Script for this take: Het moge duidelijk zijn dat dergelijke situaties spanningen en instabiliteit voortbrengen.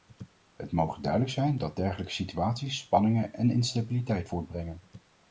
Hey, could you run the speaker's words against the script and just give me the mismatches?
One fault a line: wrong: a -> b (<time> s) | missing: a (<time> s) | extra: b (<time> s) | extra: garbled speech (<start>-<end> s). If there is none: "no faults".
no faults